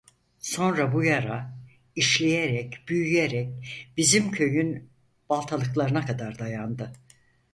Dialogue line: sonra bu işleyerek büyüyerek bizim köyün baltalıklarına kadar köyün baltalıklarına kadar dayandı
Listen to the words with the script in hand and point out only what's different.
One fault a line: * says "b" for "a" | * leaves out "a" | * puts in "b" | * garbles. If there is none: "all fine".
* puts in "yara"
* leaves out "köyün baltalıklarına kadar"